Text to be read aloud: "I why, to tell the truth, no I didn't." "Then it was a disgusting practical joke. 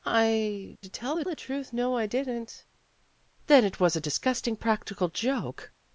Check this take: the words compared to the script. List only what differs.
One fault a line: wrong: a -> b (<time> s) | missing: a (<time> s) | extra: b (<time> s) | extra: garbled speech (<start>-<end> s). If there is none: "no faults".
missing: why (0.8 s)
extra: the (1.2 s)